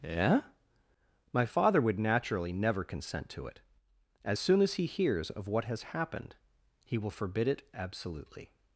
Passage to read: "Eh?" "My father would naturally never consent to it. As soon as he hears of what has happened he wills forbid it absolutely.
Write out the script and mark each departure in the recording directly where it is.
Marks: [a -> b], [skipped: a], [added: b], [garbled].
"Eh?" "My father would naturally never consent to it. As soon as he hears of what has happened he [wills -> will] forbid it absolutely.